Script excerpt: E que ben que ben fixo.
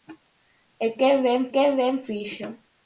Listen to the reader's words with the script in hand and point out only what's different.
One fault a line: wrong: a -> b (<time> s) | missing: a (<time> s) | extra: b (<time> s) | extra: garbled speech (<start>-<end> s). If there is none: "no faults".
no faults